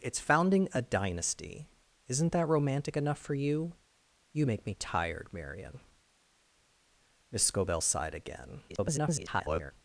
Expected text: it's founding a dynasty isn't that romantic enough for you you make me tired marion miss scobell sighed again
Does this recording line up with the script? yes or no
no